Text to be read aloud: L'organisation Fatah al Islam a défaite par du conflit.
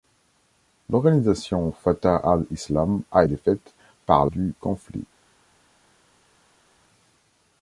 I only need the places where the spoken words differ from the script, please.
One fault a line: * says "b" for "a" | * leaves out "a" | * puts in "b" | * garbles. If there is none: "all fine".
all fine